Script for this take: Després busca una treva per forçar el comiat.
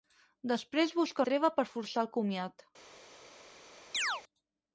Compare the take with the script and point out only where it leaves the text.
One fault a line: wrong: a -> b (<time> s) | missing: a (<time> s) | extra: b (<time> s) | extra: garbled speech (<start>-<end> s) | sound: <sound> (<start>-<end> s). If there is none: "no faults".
missing: una (1.3 s)
sound: chirp (3.9-4.2 s)